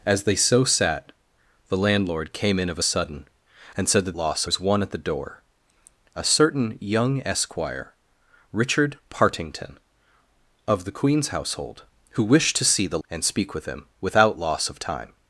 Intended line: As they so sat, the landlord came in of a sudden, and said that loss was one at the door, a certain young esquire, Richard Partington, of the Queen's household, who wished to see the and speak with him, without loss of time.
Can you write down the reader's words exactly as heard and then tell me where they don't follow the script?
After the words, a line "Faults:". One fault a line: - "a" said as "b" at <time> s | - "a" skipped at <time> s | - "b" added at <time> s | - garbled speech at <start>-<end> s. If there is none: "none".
As they so sat, the landlord came in of a sudden, and said that loss was one at the door, a certain young esquire, Richard Partington, of the Queen's household, who wished to see the and speak with him, without loss of time.
Faults:
none